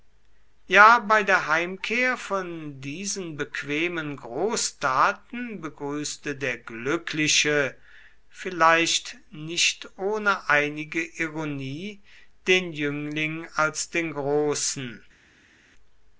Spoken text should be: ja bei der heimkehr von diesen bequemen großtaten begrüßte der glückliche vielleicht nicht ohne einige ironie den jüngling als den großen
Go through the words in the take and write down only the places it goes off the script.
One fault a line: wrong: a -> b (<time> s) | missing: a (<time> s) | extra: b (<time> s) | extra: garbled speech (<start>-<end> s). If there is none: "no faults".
no faults